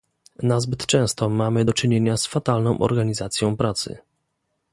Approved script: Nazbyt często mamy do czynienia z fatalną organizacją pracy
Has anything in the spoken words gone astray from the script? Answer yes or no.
no